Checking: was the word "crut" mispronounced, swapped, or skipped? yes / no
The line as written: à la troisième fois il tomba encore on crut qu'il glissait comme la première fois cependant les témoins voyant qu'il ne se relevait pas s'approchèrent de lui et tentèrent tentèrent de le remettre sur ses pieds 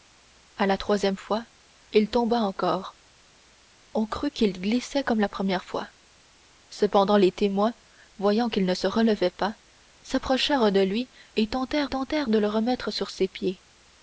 no